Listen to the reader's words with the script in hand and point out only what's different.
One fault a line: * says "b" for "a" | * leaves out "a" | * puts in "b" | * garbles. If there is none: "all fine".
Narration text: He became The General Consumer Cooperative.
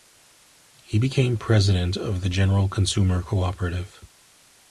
* puts in "President of"